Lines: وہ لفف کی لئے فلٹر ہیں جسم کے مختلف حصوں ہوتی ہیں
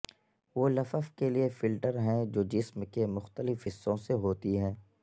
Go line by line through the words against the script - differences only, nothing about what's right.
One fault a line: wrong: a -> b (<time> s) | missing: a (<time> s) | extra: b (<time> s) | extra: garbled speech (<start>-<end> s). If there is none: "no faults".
wrong: کی -> کے (1.1 s)
extra: جو (2.3 s)
extra: سے (4.0 s)